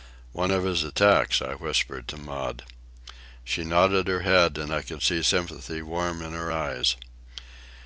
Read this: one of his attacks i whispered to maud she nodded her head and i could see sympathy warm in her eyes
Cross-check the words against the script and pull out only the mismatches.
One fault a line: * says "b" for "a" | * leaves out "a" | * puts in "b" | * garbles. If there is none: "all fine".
all fine